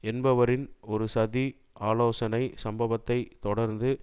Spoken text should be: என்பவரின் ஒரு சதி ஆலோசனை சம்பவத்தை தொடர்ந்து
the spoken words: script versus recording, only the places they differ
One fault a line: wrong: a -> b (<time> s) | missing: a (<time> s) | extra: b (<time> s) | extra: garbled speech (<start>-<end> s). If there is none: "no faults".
no faults